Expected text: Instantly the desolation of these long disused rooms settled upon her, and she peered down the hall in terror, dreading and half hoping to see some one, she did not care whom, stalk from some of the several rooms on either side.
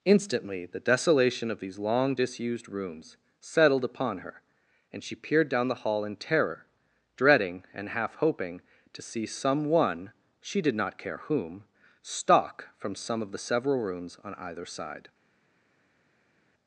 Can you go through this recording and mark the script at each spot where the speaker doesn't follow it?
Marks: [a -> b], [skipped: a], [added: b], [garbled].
Instantly the desolation of these long disused rooms settled upon her, and she peered down the hall in terror, dreading and half hoping to see some one, she did not care whom, stalk from some of the several rooms on either side.